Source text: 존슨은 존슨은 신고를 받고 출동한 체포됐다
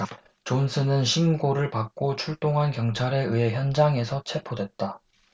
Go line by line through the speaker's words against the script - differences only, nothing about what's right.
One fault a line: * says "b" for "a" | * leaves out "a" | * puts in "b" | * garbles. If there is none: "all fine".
* leaves out "존슨은"
* puts in "경찰에 의해 현장에서"